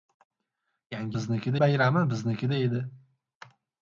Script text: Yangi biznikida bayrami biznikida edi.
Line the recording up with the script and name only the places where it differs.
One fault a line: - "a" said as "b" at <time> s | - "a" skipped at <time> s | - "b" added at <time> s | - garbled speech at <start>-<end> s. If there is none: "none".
none